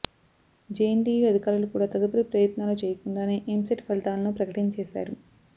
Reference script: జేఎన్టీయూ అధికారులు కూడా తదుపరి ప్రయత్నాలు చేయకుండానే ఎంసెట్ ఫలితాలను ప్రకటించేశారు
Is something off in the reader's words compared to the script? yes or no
no